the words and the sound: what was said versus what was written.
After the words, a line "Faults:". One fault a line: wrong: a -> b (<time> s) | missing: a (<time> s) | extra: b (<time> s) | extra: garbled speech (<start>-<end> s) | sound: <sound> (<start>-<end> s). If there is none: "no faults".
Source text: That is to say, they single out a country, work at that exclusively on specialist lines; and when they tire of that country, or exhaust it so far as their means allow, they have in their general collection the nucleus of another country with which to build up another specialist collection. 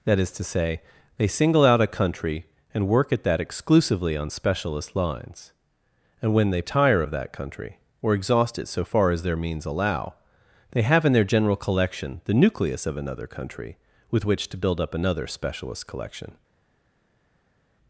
That is to say, they single out a country, and work at that exclusively on specialist lines; and when they tire of that country, or exhaust it so far as their means allow, they have in their general collection the nucleus of another country with which to build up another specialist collection.
Faults:
extra: and (2.7 s)